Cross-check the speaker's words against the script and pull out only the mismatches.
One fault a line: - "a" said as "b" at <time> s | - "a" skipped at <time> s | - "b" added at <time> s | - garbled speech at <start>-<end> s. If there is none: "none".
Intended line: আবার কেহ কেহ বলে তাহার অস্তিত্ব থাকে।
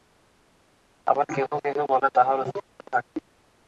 none